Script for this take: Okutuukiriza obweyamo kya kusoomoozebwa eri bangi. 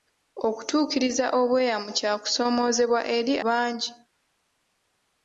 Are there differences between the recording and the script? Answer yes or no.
no